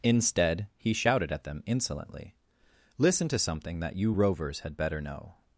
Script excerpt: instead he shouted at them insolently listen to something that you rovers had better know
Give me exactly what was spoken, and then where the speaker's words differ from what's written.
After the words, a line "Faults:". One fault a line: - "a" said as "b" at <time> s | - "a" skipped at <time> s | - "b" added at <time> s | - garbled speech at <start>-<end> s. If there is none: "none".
instead he shouted at them insolently listen to something that you rovers had better know
Faults:
none